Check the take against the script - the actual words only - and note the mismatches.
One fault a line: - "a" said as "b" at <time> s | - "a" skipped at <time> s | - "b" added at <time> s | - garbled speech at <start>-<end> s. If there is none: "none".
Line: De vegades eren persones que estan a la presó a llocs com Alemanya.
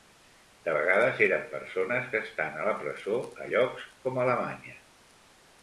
none